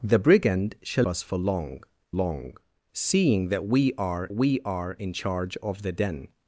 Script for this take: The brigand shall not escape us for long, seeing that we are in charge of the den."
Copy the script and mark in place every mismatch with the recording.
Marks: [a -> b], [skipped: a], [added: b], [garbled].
The brigand shall [skipped: not escape] us for long, [added: long] seeing that we are [added: we are] in charge of the den."